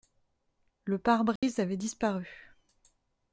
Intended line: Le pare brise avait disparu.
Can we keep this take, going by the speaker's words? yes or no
yes